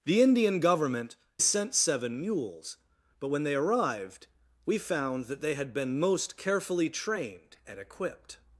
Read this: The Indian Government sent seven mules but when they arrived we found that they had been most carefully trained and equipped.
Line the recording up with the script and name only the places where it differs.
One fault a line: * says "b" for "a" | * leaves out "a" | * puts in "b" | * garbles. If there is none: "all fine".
all fine